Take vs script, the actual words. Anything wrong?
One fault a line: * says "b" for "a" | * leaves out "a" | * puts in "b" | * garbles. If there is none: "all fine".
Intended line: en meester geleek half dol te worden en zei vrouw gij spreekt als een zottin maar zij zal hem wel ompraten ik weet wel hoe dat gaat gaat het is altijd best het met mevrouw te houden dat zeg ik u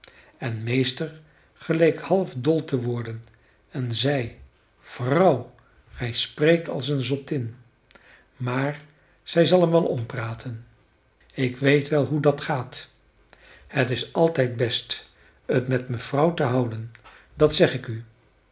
* leaves out "gaat"